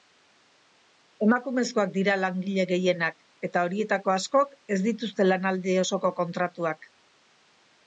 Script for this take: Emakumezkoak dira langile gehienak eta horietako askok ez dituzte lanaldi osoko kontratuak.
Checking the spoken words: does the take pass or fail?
pass